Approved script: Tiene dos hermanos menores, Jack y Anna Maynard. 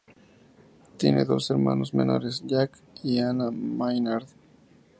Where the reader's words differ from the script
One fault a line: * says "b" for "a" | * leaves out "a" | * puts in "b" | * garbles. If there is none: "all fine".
all fine